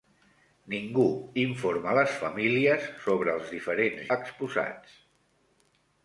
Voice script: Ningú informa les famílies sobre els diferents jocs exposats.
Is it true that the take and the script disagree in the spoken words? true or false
true